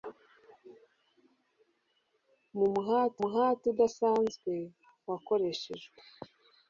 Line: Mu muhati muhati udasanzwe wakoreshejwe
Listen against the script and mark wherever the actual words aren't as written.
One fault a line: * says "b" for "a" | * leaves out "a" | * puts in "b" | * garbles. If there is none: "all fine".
all fine